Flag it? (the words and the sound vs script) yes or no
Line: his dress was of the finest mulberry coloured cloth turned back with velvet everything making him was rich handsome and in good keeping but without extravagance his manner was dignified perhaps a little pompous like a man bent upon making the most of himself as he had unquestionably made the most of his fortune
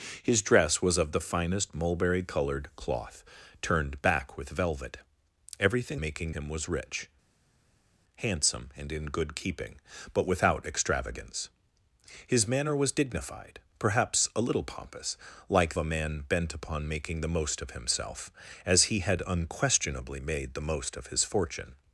no